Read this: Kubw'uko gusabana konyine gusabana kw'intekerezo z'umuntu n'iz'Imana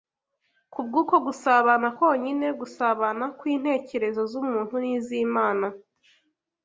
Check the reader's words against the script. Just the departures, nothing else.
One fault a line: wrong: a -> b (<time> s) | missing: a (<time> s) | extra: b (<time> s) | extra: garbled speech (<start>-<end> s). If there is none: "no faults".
no faults